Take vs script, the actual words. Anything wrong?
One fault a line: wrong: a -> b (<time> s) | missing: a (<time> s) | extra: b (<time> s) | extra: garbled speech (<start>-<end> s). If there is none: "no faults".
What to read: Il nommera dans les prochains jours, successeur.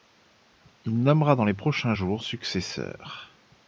no faults